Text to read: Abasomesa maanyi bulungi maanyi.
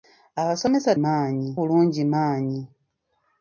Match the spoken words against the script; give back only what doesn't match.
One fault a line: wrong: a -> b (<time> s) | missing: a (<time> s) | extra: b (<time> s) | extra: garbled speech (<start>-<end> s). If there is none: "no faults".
no faults